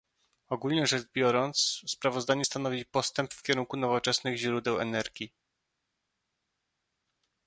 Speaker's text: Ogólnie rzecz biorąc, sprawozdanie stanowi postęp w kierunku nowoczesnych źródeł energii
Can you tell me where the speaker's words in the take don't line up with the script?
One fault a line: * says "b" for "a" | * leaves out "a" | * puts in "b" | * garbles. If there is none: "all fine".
all fine